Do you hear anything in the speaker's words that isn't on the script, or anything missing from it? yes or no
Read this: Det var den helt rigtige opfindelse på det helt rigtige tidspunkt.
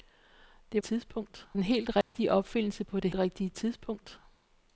yes